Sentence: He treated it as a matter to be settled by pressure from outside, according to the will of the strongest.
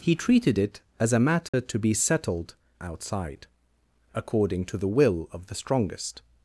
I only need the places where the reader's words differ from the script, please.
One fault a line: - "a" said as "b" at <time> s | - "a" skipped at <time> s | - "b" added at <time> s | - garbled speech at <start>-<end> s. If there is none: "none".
- "by pressure from" skipped at 2.5 s